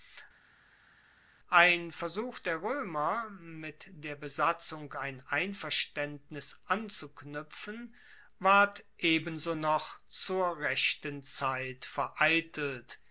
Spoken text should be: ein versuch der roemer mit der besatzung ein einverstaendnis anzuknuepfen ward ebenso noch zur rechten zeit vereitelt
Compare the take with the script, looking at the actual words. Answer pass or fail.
pass